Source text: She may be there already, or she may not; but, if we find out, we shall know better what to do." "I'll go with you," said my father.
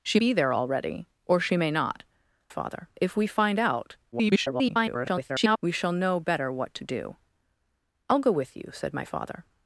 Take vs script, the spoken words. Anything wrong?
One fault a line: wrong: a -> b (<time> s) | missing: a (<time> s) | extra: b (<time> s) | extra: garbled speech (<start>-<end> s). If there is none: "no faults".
missing: may (0.2 s)
wrong: but -> father (2.5 s)
extra: garbled speech (4.1-5.6 s)